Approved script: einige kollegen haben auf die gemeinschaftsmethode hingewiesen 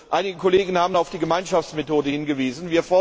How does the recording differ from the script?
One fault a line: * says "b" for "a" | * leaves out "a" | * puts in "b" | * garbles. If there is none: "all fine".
all fine